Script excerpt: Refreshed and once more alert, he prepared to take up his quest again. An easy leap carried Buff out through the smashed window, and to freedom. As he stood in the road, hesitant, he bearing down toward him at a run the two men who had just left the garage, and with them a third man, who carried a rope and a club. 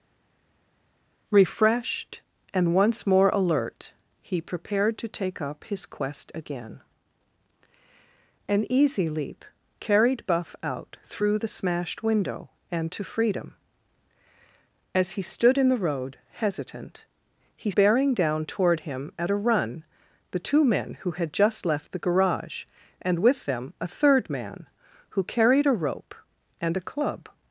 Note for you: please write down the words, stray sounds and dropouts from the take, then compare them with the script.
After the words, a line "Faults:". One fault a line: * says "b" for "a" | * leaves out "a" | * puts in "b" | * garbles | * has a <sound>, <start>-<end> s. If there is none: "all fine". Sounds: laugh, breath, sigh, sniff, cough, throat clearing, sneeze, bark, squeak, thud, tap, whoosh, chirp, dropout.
Refreshed and once more alert, he prepared to take up his quest again. An easy leap carried Buff out through the smashed window, and to freedom. As he stood in the road, hesitant, he bearing down toward him at a run the two men who had just left the garage, and with them a third man, who carried a rope and a club.
Faults:
all fine